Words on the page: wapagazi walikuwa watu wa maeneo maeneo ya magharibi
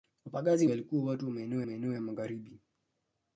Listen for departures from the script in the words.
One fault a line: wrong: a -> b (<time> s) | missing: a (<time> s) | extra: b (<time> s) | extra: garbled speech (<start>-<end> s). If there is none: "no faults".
no faults